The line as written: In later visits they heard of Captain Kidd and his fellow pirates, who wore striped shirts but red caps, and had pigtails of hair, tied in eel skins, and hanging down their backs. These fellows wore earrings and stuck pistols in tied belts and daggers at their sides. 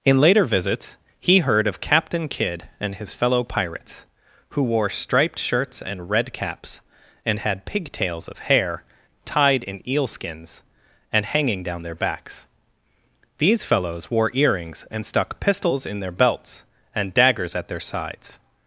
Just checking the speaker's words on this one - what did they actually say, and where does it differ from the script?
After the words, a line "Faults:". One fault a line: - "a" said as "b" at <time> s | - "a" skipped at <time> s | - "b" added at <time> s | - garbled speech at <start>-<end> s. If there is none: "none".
In later visits he heard of Captain Kidd and his fellow pirates, who wore striped shirts and red caps, and had pigtails of hair, tied in eel skins, and hanging down their backs. These fellows wore earrings and stuck pistols in their belts and daggers at their sides.
Faults:
- "they" said as "he" at 1.2 s
- "but" said as "and" at 5.8 s
- "tied" said as "their" at 16.0 s